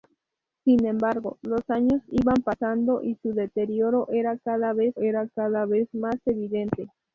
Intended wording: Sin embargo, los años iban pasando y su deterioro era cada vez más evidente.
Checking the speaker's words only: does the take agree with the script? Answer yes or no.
no